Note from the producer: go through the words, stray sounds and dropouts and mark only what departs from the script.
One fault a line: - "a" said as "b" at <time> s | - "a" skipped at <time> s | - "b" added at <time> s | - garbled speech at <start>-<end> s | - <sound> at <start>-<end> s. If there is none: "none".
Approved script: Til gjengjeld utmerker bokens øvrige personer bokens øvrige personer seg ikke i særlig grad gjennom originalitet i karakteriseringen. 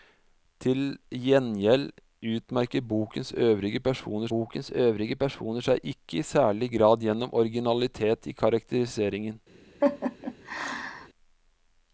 - laugh at 9.8-11.1 s